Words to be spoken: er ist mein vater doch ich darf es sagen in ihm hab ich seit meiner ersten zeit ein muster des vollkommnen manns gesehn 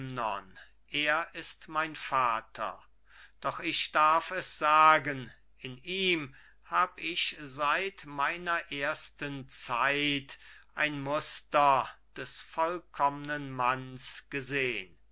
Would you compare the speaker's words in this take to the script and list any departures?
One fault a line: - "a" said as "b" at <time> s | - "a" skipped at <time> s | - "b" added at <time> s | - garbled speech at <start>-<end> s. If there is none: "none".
none